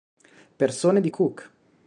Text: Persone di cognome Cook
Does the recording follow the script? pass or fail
fail